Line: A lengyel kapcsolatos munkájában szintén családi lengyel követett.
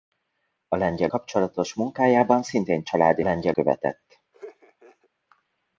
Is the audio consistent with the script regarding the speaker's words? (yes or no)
yes